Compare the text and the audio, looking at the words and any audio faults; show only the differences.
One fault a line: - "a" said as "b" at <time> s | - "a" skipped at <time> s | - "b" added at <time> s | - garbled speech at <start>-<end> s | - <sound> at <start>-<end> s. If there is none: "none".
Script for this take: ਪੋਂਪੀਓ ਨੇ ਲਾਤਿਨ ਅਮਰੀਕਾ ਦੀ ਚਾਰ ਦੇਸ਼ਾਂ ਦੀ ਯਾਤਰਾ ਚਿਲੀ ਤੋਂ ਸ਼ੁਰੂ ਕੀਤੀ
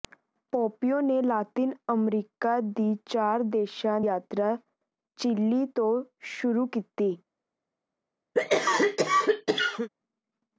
- "ਦੀ" skipped at 4.0 s
- cough at 8.3-9.9 s